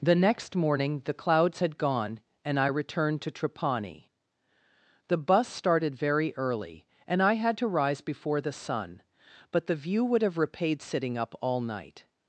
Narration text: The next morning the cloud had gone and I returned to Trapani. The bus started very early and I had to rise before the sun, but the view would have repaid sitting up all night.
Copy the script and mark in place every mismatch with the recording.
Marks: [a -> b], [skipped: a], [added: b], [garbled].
The next morning the [cloud -> clouds] had gone and I returned to Trapani. The bus started very early and I had to rise before the sun, but the view would have repaid sitting up all night.